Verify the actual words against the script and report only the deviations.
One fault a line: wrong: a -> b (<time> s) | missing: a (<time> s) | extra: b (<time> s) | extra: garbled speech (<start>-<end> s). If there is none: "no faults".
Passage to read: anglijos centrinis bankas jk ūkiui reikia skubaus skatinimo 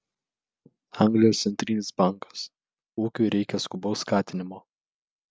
missing: jk (2.5 s)